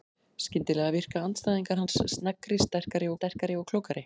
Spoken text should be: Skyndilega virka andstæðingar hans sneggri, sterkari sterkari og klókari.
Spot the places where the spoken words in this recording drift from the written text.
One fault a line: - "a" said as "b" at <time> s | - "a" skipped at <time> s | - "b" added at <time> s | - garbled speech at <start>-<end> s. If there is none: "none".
none